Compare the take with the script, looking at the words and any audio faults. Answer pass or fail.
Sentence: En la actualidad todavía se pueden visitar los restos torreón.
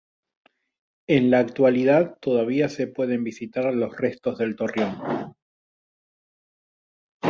fail